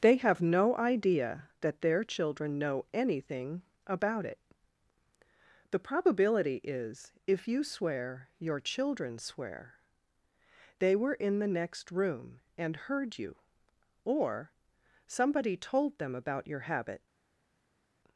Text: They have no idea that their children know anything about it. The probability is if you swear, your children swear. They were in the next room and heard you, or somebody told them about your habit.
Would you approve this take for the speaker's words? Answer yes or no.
yes